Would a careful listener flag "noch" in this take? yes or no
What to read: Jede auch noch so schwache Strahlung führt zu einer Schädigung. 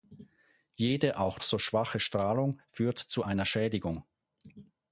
yes